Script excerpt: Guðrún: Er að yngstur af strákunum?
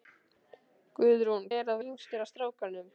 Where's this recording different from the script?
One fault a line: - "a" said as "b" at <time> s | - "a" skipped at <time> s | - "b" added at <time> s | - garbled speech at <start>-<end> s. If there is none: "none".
none